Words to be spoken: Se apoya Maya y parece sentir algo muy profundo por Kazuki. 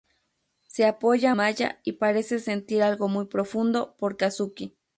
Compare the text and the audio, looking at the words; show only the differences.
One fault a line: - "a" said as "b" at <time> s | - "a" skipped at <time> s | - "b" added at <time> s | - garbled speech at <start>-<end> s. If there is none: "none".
none